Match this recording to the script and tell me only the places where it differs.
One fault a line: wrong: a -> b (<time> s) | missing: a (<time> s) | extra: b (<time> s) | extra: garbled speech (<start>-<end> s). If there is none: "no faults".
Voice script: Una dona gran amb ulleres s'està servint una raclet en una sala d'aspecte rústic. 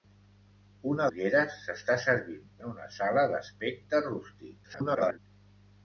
missing: dona gran amb (1.1 s)
missing: una raclet (2.5 s)
extra: garbled speech (4.6-5.2 s)